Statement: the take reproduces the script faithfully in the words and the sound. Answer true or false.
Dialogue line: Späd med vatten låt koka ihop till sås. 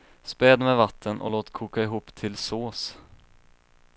false